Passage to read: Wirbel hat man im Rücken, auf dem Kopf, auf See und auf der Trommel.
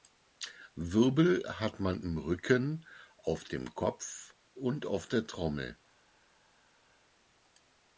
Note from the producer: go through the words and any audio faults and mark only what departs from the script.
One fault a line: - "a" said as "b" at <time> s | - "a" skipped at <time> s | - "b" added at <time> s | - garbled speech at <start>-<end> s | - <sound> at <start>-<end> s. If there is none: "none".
- "auf See" skipped at 4.3 s